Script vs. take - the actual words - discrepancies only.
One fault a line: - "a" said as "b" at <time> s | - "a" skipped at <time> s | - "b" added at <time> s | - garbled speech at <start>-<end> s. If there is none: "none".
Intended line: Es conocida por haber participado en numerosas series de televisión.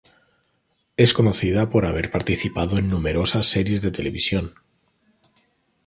none